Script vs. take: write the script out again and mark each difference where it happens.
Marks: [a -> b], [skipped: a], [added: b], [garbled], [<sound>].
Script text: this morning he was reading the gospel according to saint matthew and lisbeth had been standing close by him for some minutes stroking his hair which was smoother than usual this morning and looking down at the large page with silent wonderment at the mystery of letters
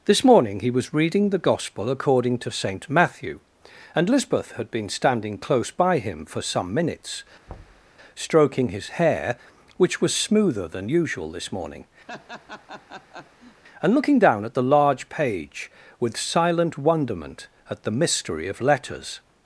this morning he was reading the gospel according to saint matthew and lisbeth had been standing close by him for some minutes [thud] stroking his hair which was smoother than usual this morning [laugh] and looking down at the large page with silent wonderment at the mystery of letters